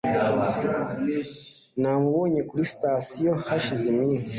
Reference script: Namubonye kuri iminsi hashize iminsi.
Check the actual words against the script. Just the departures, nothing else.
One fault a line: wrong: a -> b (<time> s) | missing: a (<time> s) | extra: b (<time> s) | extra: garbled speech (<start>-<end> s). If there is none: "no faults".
wrong: iminsi -> sitasiyo (2.7 s)